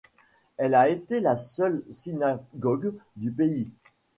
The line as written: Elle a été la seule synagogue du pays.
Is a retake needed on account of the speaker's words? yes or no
no